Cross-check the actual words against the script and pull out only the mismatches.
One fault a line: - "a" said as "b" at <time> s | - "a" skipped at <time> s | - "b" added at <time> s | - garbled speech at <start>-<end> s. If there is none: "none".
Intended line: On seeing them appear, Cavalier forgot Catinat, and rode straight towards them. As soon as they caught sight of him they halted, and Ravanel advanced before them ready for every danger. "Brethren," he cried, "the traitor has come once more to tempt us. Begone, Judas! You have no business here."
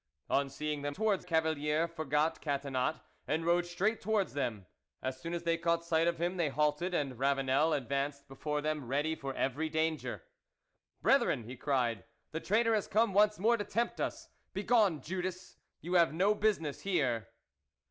- "appear" said as "towards" at 0.9 s